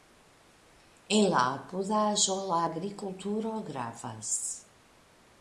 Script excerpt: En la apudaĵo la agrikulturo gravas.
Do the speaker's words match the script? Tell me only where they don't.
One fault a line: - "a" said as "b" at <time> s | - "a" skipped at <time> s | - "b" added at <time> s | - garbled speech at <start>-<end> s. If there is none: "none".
none